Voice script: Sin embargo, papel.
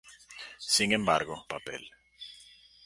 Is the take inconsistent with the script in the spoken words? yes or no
no